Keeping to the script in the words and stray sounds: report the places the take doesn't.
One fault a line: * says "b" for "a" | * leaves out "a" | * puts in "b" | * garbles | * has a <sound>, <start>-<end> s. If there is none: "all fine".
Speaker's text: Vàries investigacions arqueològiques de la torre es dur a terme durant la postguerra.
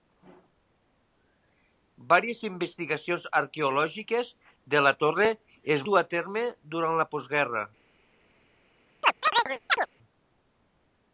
* has a chirp, 9.0-9.9 s